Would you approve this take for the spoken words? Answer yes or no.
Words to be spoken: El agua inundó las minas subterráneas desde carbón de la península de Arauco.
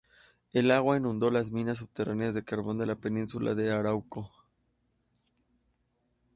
no